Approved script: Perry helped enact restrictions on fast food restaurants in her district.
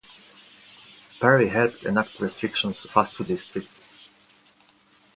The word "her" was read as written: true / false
false